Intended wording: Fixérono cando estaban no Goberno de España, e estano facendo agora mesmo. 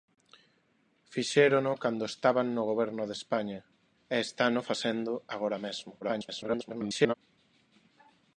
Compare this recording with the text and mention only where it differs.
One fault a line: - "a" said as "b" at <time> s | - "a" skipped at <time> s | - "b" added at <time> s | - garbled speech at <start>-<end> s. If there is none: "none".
- garbled speech at 6.0-7.1 s